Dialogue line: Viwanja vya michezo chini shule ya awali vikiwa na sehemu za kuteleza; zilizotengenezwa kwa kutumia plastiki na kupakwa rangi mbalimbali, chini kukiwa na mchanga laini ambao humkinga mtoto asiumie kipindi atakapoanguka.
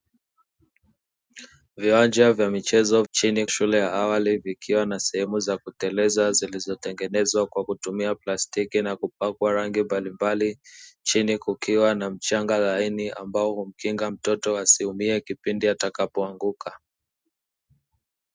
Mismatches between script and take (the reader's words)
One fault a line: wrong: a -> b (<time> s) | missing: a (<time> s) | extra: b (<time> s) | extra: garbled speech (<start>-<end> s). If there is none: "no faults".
no faults